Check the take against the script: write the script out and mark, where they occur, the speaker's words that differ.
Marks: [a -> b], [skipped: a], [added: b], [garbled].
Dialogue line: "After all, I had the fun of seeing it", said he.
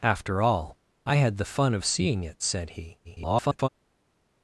"After all, I had the fun of seeing it", said he. [garbled]